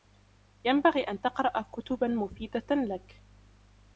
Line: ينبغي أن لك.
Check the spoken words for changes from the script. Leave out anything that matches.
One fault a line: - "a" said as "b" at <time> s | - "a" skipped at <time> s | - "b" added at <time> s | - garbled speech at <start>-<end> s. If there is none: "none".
- "تقرأ كتبا مفيدة" added at 1.2 s